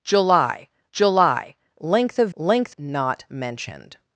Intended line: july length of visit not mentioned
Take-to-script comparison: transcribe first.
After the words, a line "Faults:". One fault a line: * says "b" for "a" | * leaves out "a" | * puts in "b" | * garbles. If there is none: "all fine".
july july length of length not mentioned
Faults:
* puts in "july"
* says "length" for "visit"